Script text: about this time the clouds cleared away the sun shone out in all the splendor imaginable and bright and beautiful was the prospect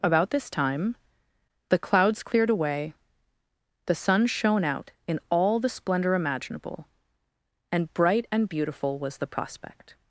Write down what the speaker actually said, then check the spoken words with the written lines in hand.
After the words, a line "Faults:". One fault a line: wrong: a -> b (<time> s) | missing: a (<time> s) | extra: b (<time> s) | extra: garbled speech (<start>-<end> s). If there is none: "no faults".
about this time the clouds cleared away the sun shone out in all the splendor imaginable and bright and beautiful was the prospect
Faults:
no faults